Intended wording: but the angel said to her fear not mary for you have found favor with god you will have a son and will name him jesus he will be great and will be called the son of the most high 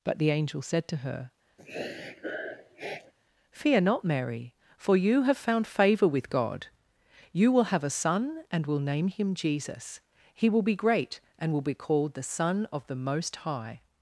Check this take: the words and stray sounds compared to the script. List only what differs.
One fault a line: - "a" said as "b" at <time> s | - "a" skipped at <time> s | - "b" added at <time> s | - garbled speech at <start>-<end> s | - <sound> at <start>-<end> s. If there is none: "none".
- sniff at 1.6-3.1 s